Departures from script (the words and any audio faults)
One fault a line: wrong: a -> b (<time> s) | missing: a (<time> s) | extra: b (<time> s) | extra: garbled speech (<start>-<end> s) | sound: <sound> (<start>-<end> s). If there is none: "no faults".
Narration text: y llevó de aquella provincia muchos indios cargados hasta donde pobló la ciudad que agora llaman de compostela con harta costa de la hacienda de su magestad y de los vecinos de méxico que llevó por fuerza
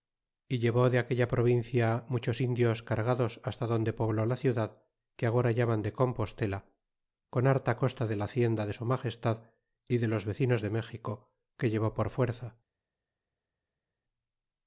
no faults